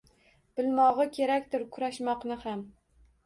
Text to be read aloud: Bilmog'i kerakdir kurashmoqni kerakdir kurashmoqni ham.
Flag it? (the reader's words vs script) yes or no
yes